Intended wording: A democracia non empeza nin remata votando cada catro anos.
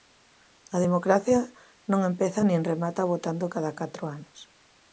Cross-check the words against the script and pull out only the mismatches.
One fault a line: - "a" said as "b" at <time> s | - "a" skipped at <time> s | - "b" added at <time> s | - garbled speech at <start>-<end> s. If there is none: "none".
none